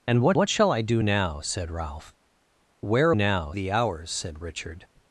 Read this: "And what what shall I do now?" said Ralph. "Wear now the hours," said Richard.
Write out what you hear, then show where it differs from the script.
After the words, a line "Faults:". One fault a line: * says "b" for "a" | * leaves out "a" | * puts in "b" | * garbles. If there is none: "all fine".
"And what what shall I do now?" said Ralph. "Wear now the hours," said Richard.
Faults:
all fine